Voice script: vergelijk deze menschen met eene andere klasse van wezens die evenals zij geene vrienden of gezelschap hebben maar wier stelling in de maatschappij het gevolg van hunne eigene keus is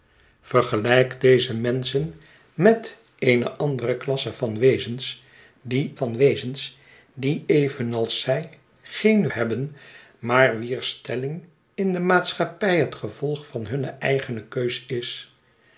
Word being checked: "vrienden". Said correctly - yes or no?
no